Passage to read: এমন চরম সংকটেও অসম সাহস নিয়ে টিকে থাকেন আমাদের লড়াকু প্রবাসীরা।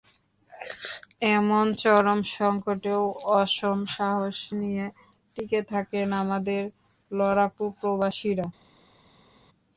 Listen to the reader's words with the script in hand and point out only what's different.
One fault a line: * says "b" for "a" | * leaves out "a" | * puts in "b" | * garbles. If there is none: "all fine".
all fine